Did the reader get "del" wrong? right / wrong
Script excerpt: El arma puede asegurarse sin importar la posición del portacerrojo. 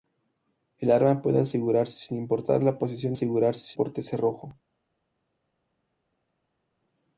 wrong